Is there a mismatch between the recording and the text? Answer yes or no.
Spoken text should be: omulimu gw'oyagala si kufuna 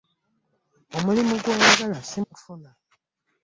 no